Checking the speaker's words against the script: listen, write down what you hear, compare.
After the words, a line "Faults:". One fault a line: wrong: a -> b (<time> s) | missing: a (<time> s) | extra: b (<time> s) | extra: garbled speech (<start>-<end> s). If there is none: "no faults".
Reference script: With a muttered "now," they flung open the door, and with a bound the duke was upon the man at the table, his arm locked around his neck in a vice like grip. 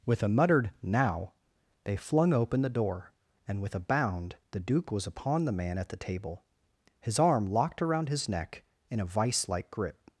With a muttered "now," they flung open the door, and with a bound the duke was upon the man at the table, his arm locked around his neck in a vice like grip.
Faults:
no faults